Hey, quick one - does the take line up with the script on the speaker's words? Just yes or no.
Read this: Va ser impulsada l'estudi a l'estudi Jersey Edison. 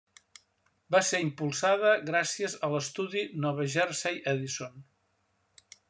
no